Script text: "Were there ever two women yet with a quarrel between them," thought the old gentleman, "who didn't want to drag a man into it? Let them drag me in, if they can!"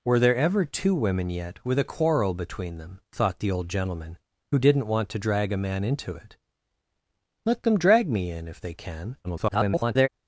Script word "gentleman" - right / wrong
right